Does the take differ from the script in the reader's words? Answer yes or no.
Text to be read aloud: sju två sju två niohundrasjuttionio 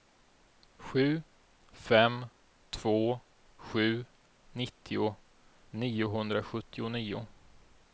yes